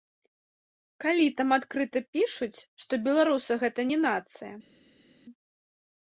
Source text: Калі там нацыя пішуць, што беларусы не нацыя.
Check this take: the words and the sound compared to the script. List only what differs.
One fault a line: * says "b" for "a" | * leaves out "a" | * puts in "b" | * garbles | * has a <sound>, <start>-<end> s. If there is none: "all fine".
* says "адкрыта" for "нацыя"
* puts in "гэта"